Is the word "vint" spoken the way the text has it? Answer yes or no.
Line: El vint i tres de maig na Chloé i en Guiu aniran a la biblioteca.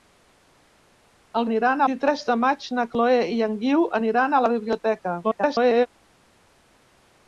no